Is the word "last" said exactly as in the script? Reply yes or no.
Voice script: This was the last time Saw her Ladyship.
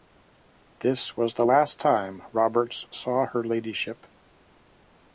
yes